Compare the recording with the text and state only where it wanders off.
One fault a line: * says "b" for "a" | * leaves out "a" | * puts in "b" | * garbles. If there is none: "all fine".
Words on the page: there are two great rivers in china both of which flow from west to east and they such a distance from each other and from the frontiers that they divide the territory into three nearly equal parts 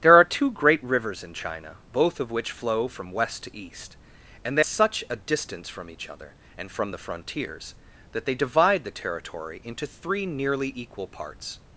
all fine